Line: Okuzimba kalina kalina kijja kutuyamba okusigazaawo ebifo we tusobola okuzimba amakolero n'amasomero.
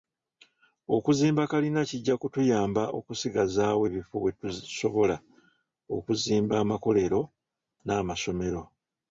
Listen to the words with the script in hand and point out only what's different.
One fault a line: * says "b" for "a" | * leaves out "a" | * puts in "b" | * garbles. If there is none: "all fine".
* leaves out "kalina"